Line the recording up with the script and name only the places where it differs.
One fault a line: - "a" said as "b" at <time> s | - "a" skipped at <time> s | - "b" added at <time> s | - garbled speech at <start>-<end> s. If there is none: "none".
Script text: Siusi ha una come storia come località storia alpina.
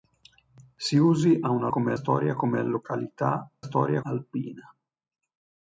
none